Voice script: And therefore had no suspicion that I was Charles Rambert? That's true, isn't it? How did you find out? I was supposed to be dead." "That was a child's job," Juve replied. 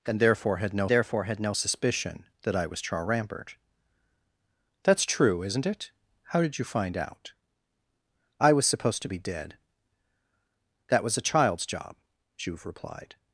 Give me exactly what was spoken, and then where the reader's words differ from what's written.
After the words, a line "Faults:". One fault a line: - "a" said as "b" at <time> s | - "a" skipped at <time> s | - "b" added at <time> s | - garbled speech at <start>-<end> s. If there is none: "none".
And therefore had no therefore had no suspicion that I was Charles Rambert? That's true, isn't it? How did you find out? I was supposed to be dead." "That was a child's job," Juve replied.
Faults:
- "therefore had no" added at 0.9 s